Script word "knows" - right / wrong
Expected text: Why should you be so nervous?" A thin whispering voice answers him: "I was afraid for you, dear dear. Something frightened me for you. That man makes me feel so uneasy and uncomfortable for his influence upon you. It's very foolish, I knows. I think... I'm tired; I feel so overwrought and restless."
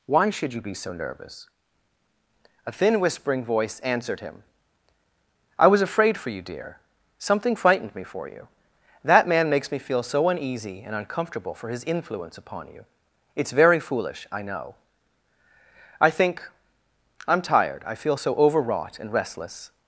wrong